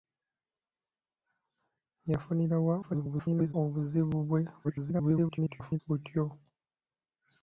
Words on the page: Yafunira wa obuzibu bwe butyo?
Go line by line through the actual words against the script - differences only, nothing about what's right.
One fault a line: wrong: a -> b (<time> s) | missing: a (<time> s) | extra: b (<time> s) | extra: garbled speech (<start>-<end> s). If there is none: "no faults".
extra: garbled speech (2.8-3.5 s)
extra: garbled speech (4.6-5.8 s)